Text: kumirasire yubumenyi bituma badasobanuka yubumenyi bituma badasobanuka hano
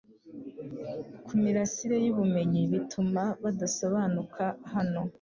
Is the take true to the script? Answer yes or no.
no